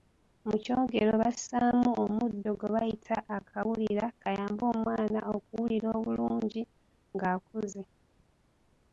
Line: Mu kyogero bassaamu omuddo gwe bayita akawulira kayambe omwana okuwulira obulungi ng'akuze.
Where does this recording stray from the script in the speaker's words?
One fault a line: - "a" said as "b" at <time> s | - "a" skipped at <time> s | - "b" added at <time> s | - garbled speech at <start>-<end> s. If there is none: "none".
none